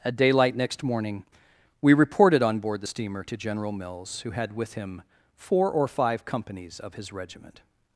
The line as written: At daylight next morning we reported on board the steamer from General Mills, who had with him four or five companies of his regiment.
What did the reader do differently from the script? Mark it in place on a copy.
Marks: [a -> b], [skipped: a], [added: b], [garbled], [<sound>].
At daylight next morning we reported on board the steamer [from -> to] General Mills, who had with him four or five companies of his regiment.